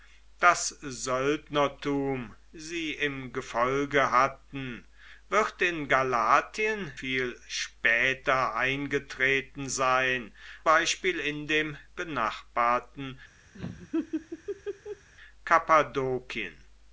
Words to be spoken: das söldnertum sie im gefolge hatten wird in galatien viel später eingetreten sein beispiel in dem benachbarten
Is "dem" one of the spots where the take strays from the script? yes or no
no